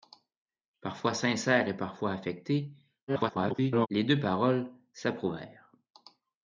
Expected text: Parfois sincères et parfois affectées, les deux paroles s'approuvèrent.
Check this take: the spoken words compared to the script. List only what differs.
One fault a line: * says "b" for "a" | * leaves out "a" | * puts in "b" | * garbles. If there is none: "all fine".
* garbles